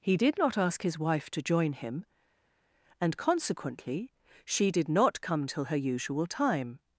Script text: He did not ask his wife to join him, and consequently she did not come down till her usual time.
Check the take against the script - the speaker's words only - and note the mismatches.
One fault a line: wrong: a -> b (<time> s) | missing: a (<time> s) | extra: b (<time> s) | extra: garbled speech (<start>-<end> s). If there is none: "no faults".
missing: down (5.5 s)